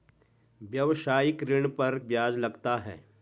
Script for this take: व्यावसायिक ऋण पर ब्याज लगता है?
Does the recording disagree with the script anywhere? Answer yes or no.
no